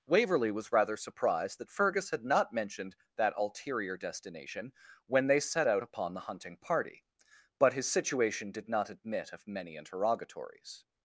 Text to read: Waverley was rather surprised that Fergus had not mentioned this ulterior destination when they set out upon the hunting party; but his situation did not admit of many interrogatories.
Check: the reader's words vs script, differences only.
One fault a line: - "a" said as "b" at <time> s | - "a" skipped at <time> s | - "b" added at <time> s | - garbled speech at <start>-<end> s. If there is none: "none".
- "this" said as "that" at 3.2 s